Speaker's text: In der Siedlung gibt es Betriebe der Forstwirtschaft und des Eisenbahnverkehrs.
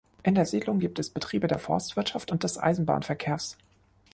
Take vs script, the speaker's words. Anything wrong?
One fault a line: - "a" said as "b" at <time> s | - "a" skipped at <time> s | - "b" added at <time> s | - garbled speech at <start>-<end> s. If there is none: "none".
none